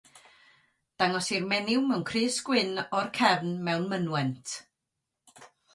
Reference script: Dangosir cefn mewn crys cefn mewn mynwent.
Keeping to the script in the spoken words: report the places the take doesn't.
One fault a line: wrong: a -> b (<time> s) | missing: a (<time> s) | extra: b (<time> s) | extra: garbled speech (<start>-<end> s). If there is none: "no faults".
wrong: cefn -> menyw (1.5 s)
extra: gwyn o'r (2.5 s)